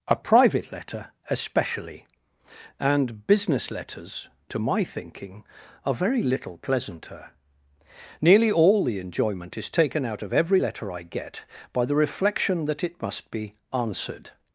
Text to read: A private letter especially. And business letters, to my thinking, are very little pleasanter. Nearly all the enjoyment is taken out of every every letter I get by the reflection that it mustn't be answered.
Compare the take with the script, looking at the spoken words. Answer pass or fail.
fail